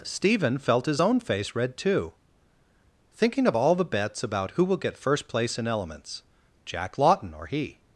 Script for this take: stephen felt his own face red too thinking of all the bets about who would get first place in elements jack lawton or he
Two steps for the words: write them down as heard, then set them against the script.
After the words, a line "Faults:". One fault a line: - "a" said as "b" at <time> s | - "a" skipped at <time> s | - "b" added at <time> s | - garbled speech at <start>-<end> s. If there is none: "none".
stephen felt his own face red too thinking of all the bets about who will get first place in elements jack lawton or he
Faults:
- "would" said as "will" at 4.6 s